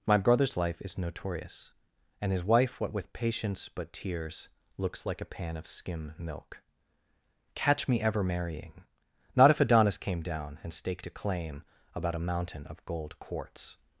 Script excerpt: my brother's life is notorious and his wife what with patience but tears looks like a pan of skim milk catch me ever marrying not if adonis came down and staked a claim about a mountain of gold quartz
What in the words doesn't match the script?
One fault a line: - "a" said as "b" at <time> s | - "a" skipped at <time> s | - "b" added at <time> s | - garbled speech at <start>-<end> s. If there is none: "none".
none